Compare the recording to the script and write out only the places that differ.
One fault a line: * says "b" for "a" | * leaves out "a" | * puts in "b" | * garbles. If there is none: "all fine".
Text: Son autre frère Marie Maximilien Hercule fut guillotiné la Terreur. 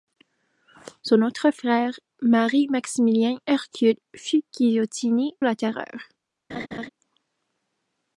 all fine